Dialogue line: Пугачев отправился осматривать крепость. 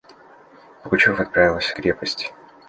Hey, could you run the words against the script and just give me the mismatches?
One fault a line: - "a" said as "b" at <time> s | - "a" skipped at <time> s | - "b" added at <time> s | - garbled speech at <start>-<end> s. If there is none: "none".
- "осматривать" skipped at 1.7 s